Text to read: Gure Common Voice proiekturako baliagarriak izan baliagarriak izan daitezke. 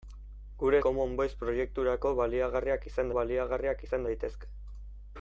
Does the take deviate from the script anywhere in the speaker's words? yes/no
no